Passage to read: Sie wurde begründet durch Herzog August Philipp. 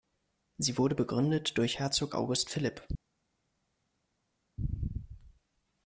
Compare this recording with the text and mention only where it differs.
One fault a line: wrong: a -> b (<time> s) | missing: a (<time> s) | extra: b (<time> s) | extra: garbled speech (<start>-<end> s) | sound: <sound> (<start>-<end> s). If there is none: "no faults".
no faults